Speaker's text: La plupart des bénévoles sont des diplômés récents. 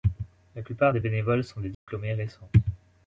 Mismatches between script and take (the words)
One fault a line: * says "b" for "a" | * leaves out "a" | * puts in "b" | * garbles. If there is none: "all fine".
all fine